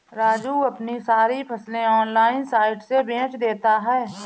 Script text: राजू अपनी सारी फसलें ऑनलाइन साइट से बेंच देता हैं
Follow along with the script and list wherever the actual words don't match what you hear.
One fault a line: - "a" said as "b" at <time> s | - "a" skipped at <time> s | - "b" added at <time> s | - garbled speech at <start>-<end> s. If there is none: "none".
none